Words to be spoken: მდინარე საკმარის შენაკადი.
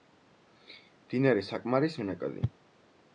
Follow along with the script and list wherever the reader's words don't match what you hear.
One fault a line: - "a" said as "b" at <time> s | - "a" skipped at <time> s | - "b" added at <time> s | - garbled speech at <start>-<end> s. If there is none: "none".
none